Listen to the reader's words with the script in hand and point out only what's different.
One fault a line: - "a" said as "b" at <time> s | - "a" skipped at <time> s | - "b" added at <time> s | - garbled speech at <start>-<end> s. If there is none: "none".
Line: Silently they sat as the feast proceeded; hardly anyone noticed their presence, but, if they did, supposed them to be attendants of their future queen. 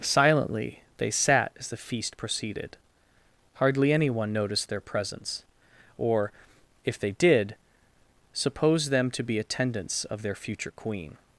- "but" said as "or" at 6.0 s